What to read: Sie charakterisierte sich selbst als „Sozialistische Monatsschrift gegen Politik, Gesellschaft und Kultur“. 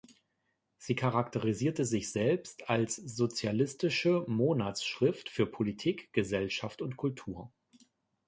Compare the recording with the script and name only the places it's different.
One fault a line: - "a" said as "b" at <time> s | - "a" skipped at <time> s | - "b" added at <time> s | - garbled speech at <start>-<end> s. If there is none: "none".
- "gegen" said as "für" at 5.3 s